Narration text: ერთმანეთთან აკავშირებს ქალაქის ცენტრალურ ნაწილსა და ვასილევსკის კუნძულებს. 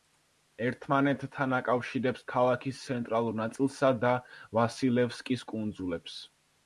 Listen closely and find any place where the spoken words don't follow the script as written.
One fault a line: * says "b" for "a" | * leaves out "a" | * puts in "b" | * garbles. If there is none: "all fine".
all fine